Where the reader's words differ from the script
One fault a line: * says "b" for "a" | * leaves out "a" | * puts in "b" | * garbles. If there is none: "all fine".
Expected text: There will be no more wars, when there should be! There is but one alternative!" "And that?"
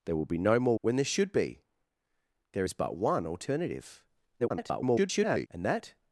* leaves out "wars"
* garbles